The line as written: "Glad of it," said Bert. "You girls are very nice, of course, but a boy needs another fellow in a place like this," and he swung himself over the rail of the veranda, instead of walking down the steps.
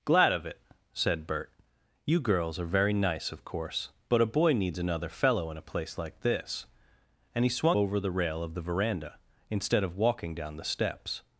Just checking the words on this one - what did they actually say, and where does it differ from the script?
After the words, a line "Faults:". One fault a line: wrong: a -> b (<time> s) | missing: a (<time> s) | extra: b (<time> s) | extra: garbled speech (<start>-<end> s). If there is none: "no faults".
"Glad of it," said Bert. "You girls are very nice, of course, but a boy needs another fellow in a place like this," and he swung over the rail of the veranda, instead of walking down the steps.
Faults:
missing: himself (7.8 s)